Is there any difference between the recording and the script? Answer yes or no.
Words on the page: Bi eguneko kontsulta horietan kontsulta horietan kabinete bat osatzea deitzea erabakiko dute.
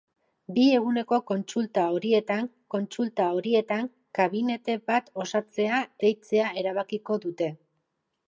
no